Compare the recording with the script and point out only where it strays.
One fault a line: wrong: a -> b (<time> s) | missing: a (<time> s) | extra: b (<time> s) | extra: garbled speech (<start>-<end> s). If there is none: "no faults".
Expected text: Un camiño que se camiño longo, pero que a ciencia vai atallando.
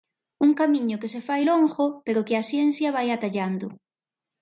wrong: camiño -> fai (1.3 s)